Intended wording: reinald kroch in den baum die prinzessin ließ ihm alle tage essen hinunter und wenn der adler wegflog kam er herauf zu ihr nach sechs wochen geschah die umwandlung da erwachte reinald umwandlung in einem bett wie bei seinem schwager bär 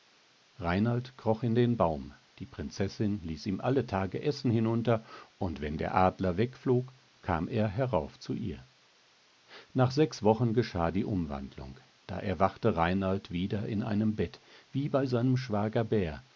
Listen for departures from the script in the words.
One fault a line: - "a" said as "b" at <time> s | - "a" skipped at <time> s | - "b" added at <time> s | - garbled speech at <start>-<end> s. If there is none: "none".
- "umwandlung" said as "wieder" at 13.3 s